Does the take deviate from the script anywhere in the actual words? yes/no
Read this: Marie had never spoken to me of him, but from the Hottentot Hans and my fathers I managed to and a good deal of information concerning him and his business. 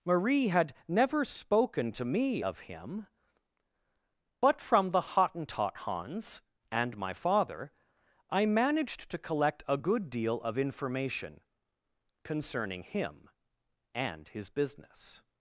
yes